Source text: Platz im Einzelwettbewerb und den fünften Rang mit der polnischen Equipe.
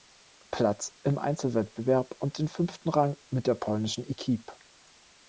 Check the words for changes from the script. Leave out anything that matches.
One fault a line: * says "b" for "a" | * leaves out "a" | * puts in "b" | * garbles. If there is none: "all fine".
all fine